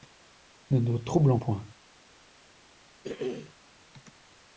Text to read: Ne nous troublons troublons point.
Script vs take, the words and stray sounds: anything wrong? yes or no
yes